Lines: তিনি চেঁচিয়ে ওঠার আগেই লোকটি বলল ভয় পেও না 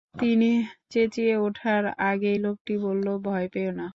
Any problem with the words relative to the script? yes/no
no